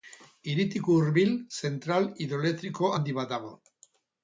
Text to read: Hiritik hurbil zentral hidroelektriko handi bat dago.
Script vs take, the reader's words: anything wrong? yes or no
no